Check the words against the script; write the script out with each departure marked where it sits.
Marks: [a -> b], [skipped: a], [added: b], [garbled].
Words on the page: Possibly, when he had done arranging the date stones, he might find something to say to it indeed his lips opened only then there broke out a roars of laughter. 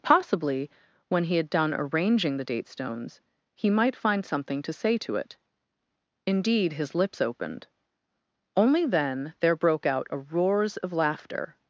Possibly, when he had done arranging the date stones, he might find something to say to it indeed his lips opened only then there broke out a roars of laughter.